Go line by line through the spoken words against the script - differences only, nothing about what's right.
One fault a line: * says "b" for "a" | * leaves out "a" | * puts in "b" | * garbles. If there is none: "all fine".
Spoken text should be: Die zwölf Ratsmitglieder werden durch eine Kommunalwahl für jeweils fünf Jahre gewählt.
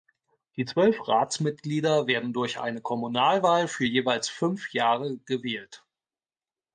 all fine